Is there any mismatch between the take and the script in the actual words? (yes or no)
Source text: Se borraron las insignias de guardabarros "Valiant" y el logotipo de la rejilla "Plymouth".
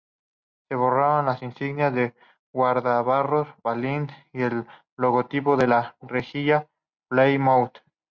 no